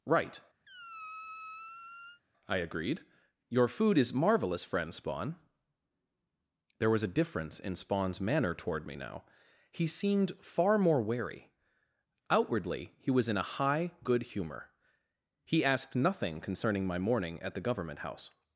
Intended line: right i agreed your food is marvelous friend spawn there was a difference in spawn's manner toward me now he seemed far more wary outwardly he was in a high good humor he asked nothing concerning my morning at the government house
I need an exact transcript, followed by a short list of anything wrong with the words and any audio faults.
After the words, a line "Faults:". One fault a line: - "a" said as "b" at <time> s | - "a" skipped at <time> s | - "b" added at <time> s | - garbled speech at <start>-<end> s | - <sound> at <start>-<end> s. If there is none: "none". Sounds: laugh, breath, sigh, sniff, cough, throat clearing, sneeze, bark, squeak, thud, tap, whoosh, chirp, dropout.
right i agreed your food is marvelous friend spawn there was a difference in spawn's manner toward me now he seemed far more wary outwardly he was in a high good humor he asked nothing concerning my morning at the government house
Faults:
- squeak at 0.7-2.2 s